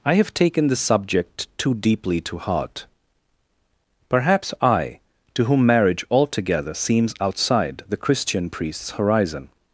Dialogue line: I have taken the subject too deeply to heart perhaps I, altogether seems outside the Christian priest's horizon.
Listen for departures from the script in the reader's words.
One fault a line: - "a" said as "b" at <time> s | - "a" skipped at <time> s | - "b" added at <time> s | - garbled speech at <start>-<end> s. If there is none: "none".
- "to whom marriage" added at 5.3 s